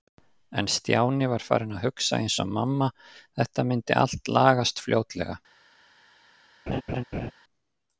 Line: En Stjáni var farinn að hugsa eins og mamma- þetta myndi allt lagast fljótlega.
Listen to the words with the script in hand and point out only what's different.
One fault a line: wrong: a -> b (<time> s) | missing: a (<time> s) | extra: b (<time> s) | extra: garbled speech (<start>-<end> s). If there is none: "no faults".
no faults